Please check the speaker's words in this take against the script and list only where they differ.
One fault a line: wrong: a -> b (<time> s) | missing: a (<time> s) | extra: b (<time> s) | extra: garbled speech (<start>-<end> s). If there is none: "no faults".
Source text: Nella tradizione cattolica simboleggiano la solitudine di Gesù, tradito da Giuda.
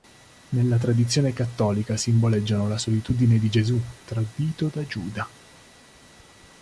no faults